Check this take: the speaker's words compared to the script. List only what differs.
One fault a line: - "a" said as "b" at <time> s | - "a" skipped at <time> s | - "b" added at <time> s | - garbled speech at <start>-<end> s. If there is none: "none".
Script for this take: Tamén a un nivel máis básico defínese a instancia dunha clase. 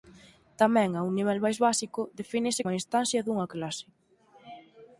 none